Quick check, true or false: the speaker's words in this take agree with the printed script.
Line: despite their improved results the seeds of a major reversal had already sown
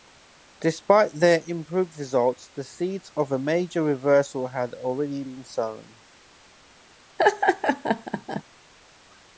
false